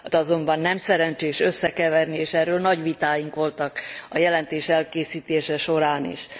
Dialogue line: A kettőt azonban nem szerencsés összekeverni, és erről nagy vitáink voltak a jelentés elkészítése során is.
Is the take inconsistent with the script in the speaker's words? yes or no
yes